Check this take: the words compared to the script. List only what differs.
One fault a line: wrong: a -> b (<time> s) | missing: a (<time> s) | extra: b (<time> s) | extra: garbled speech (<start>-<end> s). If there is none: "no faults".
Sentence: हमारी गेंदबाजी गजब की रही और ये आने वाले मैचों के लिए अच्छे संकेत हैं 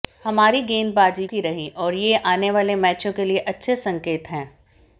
missing: गजब (1.2 s)